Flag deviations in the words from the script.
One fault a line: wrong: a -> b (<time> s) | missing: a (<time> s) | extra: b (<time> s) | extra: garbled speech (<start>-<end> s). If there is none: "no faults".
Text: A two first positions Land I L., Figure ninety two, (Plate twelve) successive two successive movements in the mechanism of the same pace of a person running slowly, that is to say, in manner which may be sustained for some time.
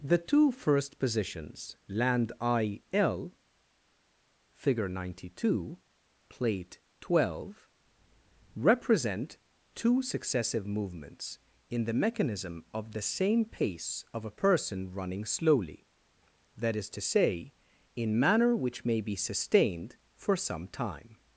wrong: A -> The (0.0 s)
wrong: successive -> represent (8.6 s)